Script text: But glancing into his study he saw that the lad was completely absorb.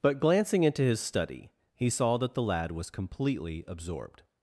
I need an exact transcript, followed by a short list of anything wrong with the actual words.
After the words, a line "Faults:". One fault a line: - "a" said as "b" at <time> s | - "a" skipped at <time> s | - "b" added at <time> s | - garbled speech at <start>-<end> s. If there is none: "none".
But glancing into his study he saw that the lad was completely absorbed.
Faults:
- "absorb" said as "absorbed" at 3.7 s